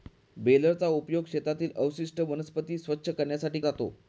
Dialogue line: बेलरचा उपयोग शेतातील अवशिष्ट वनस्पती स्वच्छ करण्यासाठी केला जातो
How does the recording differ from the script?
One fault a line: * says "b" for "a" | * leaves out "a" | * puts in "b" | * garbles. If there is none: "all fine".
* leaves out "केला"